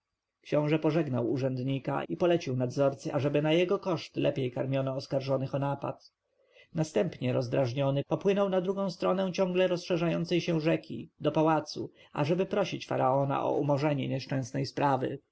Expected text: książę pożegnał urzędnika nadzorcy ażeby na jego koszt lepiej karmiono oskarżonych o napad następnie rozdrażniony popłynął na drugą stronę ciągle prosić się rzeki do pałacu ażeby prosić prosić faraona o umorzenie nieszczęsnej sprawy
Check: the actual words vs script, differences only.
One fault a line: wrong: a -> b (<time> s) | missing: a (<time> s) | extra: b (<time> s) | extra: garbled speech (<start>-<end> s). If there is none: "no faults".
extra: i polecił (2.0 s)
wrong: prosić -> rozszerzającej (9.7 s)
missing: prosić (12.9 s)